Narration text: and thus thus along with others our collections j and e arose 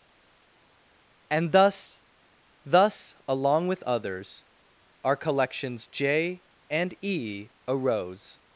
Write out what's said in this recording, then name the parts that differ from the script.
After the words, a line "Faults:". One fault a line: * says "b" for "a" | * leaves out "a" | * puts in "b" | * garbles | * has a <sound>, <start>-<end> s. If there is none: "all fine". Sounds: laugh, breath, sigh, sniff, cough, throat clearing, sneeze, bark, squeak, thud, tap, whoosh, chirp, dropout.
and thus thus along with others our collections j and e arose
Faults:
all fine